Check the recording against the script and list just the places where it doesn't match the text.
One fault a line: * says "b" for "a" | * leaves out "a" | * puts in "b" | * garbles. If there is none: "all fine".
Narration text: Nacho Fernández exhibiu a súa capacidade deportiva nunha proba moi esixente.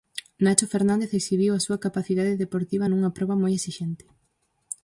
all fine